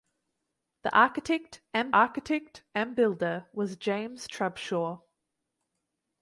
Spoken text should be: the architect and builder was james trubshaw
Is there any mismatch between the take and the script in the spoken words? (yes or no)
yes